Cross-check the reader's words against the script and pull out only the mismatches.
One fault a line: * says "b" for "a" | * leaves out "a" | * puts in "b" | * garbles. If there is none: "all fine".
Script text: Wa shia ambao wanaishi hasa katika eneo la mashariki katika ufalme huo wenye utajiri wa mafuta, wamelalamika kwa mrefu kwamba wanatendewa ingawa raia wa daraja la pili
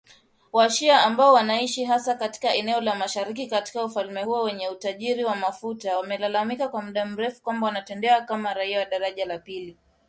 * puts in "muda"
* says "kama" for "ingawa"